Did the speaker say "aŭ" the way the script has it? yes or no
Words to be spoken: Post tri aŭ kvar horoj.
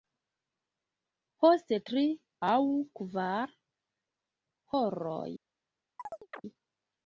yes